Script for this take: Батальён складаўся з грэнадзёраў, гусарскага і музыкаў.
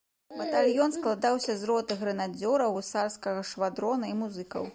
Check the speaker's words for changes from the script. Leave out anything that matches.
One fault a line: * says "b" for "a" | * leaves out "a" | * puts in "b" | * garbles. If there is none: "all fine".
* puts in "роты"
* puts in "швадрона"